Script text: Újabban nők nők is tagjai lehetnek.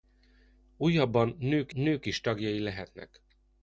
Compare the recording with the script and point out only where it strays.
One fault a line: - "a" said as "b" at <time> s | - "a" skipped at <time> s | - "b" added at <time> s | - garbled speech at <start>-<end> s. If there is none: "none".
none